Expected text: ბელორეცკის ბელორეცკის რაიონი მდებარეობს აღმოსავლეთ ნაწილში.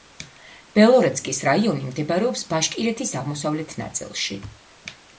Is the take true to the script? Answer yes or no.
no